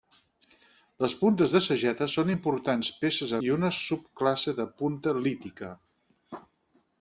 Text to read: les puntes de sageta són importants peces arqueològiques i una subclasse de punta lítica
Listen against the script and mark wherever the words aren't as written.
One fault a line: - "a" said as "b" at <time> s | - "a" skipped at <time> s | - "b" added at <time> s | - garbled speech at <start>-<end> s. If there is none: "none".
- "arqueològiques" skipped at 3.3 s